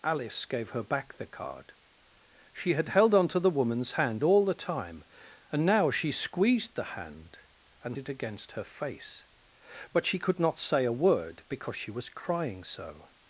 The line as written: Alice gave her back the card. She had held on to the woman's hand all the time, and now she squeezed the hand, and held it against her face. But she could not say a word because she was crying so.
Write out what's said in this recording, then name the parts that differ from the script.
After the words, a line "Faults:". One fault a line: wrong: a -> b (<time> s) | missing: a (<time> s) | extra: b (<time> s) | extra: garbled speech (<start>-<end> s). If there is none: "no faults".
Alice gave her back the card. She had held on to the woman's hand all the time, and now she squeezed the hand, and it against her face. But she could not say a word because she was crying so.
Faults:
missing: held (8.0 s)